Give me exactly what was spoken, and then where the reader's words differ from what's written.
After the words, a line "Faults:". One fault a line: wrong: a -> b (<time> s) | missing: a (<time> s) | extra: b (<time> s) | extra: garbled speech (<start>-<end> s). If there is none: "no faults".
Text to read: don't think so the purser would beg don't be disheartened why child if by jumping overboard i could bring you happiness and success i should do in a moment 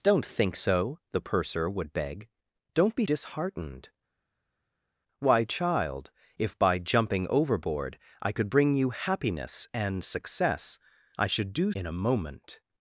don't think so the purser would beg don't be disheartened why child if by jumping overboard i could bring you happiness and success i should do in a moment
Faults:
no faults